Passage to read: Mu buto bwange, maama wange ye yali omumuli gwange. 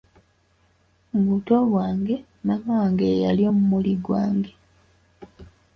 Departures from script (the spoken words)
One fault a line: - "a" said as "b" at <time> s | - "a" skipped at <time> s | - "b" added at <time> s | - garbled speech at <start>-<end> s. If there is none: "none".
none